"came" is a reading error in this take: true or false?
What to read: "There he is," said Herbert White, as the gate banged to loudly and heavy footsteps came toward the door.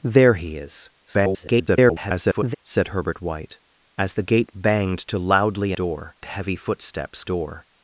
true